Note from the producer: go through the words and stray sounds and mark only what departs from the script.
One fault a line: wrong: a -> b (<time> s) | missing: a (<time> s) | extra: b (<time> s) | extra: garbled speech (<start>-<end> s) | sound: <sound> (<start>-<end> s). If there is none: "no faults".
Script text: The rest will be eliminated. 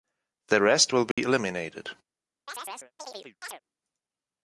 sound: dropout (1.1-1.2 s)
sound: chirp (2.5-3.6 s)